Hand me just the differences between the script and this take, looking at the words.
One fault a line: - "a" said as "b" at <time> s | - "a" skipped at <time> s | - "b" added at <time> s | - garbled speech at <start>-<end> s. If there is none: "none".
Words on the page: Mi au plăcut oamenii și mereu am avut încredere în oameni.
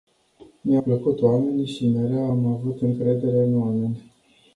- "au" skipped at 0.8 s